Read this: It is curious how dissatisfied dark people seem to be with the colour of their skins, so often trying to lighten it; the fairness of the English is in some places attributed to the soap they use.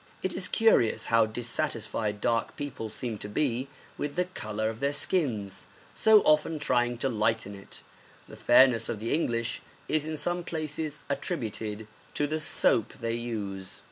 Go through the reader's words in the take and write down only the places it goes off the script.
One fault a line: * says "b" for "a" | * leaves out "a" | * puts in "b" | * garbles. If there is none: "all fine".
all fine